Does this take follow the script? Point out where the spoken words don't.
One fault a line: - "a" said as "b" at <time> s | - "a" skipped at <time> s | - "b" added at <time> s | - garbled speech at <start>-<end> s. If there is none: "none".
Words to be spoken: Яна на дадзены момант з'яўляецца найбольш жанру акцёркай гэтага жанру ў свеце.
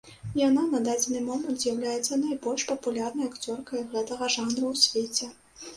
- "жанру" said as "папулярнай" at 2.7 s